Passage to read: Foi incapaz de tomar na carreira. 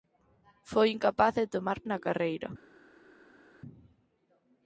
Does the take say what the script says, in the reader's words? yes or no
yes